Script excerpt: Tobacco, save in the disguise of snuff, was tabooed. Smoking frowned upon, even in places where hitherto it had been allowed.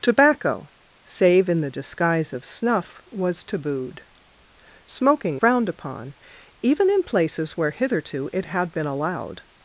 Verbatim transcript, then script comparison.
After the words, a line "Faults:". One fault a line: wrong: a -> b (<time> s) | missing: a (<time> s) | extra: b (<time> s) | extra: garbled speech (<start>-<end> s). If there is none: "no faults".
Tobacco, save in the disguise of snuff, was tabooed. Smoking frowned upon, even in places where hitherto it had been allowed.
Faults:
no faults